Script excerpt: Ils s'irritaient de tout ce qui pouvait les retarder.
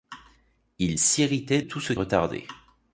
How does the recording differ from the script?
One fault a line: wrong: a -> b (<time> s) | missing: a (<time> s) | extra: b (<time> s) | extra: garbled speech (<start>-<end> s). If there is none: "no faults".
missing: de (1.6 s)
missing: qui pouvait les (1.9 s)